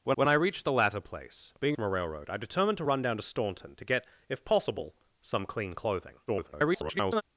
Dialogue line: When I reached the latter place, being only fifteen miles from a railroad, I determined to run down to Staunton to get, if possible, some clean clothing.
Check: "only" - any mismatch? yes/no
yes